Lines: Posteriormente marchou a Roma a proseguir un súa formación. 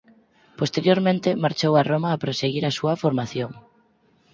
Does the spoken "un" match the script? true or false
false